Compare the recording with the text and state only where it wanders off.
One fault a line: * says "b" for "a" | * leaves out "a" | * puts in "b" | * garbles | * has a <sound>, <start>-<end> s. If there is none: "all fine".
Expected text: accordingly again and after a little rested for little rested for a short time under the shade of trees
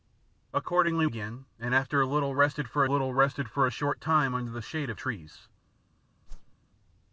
* has a whoosh, 6.3-6.6 s